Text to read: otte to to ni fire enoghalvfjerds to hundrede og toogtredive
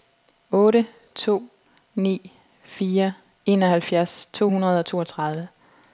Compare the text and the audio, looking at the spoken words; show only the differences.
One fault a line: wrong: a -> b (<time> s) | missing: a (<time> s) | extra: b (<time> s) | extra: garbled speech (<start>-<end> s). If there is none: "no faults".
missing: to (1.4 s)